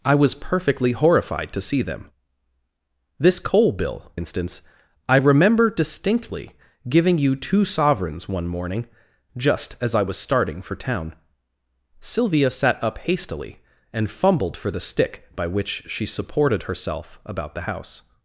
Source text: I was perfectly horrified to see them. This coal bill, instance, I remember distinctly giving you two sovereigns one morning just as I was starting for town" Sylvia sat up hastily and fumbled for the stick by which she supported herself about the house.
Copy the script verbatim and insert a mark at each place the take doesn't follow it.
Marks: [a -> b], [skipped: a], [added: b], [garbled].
I was perfectly horrified to see them. This coal bill, instance, I remember distinctly giving you two sovereigns one morning just as I was starting for town" Sylvia sat up hastily and fumbled for the stick by which she supported herself about the house.